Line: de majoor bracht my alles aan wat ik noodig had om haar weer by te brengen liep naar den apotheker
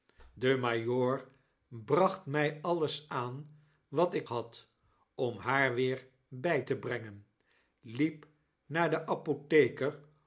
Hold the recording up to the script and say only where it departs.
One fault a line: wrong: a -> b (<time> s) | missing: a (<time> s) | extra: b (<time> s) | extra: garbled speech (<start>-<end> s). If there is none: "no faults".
missing: noodig (4.3 s)